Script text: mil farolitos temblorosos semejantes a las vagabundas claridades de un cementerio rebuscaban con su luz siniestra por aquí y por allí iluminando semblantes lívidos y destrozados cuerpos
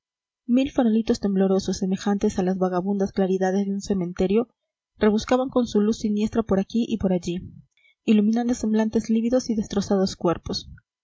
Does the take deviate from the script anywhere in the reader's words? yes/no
no